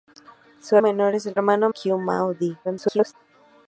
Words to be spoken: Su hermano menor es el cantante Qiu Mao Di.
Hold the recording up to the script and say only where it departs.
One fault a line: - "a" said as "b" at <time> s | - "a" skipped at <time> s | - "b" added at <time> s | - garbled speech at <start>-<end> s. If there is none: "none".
- "hermano" skipped at 0.8 s
- "cantante" said as "hermano" at 1.3 s
- garbled speech at 2.6-3.1 s